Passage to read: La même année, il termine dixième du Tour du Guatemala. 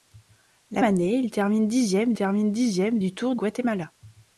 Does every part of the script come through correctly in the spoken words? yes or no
no